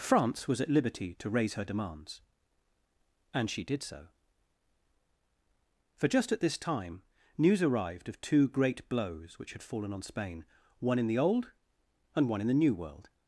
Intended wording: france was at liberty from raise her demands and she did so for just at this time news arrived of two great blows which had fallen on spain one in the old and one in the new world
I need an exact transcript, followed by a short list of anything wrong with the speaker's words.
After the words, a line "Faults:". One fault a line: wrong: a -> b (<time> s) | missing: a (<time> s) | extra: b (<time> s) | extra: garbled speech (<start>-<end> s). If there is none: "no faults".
france was at liberty to raise her demands and she did so for just at this time news arrived of two great blows which had fallen on spain one in the old and one in the new world
Faults:
wrong: from -> to (1.2 s)